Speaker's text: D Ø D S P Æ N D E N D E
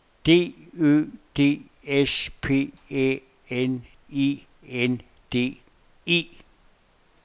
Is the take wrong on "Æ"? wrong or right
right